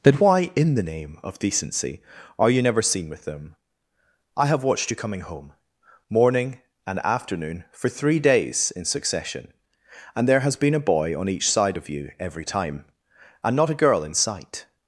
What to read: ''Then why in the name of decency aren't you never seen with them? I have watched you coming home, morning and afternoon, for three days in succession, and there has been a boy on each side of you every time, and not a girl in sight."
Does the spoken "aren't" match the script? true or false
false